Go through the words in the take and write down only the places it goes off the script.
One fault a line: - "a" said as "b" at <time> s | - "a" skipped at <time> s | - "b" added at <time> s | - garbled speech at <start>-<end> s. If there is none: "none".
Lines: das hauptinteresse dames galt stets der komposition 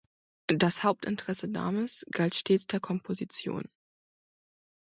none